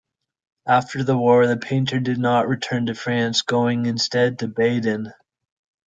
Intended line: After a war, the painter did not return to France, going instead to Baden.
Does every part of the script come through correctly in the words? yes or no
no